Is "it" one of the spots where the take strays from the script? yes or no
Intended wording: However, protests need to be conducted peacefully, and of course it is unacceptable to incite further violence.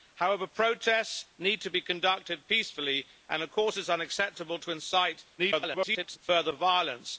no